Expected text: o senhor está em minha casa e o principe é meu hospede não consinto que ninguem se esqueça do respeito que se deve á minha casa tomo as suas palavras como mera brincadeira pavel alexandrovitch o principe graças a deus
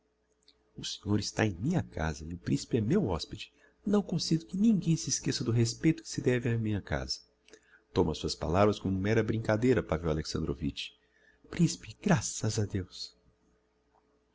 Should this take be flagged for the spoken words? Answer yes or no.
no